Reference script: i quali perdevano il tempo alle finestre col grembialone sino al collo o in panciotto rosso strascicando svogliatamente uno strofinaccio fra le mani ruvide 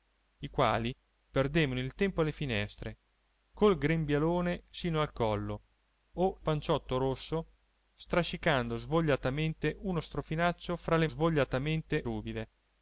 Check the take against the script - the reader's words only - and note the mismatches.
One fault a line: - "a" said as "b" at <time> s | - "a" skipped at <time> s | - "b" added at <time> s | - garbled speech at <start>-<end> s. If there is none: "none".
- "in" skipped at 6.4 s
- "mani" said as "svogliatamente" at 11.1 s